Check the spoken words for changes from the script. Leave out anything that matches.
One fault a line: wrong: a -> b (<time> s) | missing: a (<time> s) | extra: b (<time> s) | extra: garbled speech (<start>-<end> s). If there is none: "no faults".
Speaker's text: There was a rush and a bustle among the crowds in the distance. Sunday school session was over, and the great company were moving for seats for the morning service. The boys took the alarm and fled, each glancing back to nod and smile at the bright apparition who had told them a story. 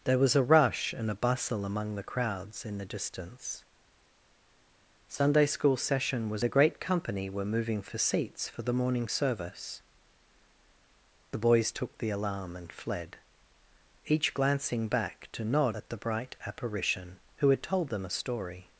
missing: over and (6.4 s)
missing: and smile (15.8 s)